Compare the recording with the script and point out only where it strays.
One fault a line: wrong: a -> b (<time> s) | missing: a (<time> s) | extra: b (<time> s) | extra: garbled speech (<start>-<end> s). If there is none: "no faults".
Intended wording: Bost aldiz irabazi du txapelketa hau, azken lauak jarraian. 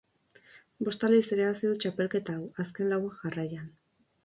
no faults